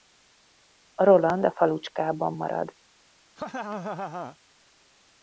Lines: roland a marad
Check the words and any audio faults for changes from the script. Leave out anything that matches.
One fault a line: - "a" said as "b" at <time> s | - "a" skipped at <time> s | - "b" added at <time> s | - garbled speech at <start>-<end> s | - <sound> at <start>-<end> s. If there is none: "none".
- "falucskában" added at 1.5 s
- laugh at 3.4-4.4 s